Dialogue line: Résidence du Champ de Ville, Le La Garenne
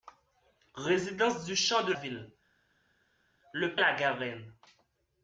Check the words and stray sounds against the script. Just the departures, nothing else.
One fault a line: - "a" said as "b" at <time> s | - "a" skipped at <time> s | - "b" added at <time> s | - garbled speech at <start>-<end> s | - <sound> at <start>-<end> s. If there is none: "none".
none